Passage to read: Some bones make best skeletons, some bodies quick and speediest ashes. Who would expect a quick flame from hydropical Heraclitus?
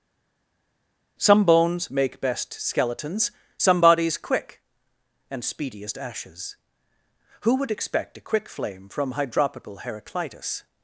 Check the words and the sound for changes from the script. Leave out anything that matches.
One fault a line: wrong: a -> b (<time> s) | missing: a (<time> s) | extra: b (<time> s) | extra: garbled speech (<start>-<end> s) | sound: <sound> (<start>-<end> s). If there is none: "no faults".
no faults